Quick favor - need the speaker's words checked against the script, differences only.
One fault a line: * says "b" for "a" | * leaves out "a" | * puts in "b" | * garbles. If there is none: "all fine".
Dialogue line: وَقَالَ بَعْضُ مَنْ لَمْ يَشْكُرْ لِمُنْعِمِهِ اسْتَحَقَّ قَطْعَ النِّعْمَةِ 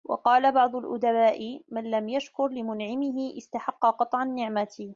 * puts in "الْأُدَبَاءِ"